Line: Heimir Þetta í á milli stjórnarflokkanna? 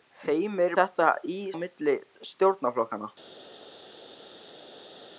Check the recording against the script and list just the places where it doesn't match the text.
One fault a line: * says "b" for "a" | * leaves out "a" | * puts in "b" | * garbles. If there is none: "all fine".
all fine